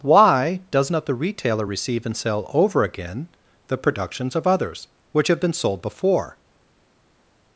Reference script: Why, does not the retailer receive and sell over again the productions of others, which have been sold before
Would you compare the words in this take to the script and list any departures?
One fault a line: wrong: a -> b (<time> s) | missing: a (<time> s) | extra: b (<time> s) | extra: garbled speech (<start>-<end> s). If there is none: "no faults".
no faults